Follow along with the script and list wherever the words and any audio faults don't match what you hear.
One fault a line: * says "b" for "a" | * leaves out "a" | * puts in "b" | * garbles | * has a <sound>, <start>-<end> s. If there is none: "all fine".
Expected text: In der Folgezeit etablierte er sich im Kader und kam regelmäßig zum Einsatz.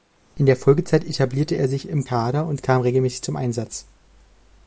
all fine